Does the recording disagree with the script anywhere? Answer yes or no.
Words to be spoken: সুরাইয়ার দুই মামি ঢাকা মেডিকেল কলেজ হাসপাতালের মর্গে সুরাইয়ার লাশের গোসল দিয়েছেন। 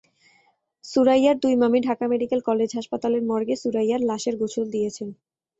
no